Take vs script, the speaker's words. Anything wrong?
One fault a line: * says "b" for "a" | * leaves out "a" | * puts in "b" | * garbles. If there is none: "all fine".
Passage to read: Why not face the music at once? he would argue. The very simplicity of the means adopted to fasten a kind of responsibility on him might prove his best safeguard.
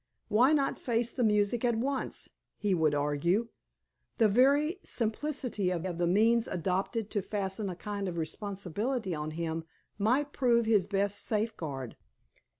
* puts in "of"